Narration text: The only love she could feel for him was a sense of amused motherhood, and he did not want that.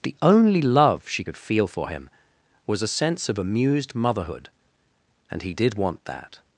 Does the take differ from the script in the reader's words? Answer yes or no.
yes